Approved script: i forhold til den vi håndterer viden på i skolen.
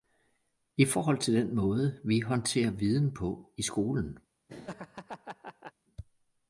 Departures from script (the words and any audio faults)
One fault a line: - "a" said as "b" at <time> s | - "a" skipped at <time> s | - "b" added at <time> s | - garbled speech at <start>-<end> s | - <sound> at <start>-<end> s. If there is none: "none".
- "måde" added at 1.6 s
- laugh at 4.5-5.7 s